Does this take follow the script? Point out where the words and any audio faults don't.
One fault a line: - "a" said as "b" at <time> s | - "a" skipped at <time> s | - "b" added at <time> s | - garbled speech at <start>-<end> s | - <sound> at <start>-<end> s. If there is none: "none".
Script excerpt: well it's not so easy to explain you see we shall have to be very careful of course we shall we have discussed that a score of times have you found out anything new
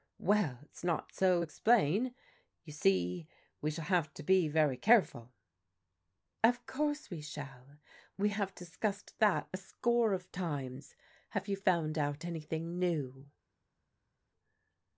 - "easy to" skipped at 1.4 s